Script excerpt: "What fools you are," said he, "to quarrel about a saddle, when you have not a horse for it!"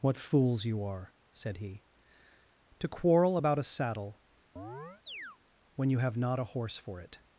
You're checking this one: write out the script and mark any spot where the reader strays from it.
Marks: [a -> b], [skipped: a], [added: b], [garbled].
"What fools you are," said he, "to quarrel about a saddle, when you have not a horse for it!"